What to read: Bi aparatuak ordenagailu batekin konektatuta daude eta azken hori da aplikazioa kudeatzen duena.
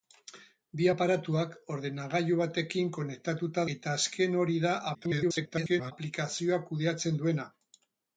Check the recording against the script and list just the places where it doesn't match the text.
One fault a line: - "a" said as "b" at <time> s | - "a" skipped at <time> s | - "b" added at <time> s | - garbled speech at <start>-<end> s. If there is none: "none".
- "daude" skipped at 3.7 s
- garbled speech at 4.9-5.9 s